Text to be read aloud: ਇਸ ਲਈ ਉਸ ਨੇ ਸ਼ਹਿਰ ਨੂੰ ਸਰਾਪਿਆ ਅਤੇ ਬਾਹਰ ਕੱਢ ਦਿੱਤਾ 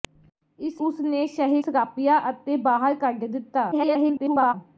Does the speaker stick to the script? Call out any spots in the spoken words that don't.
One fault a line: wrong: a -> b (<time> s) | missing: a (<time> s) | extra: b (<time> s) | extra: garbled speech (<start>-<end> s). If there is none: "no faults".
missing: ਲਈ (0.8 s)
missing: ਨੂੰ (1.6 s)
extra: garbled speech (3.7-4.5 s)